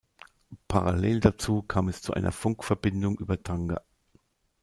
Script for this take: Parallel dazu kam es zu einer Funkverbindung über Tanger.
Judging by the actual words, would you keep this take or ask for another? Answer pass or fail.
pass